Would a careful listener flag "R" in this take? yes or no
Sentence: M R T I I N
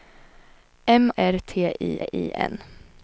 no